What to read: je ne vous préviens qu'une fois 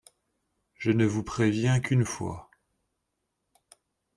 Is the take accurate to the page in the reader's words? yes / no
yes